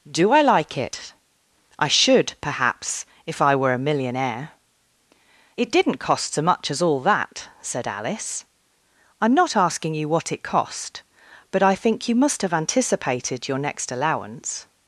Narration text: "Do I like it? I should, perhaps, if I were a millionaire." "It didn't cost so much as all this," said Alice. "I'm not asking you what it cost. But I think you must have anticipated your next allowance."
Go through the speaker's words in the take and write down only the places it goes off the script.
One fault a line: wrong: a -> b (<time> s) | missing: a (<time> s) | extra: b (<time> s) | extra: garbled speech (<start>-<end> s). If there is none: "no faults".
wrong: this -> that (7.0 s)